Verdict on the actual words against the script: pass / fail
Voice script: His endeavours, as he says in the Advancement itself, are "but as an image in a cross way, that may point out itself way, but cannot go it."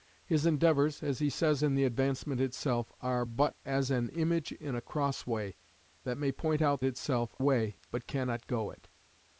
pass